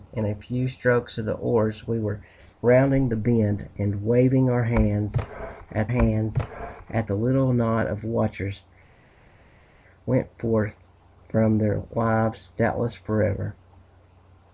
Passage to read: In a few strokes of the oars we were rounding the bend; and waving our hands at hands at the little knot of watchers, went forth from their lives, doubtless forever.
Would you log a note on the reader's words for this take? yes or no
no